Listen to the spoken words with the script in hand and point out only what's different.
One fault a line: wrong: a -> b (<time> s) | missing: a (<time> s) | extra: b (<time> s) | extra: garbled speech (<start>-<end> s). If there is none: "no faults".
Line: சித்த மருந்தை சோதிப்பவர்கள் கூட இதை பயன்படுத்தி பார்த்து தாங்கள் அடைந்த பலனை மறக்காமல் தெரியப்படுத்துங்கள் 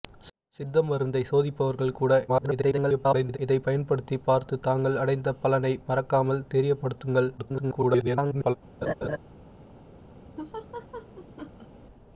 extra: garbled speech (2.3-3.4 s)
extra: garbled speech (7.4-8.6 s)